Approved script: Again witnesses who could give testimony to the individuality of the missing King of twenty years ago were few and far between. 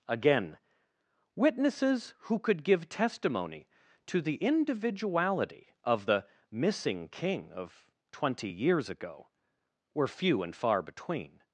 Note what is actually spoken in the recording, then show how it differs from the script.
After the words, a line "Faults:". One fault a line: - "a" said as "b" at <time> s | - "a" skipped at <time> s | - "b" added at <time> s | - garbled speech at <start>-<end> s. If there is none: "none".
Again witnesses who could give testimony to the individuality of the missing King of twenty years ago were few and far between.
Faults:
none